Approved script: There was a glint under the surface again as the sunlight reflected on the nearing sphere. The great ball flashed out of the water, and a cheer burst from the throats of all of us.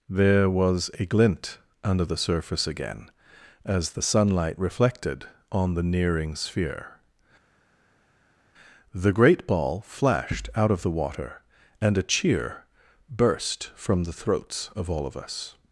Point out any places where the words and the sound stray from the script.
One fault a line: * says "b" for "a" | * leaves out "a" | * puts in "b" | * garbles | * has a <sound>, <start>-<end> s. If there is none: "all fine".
all fine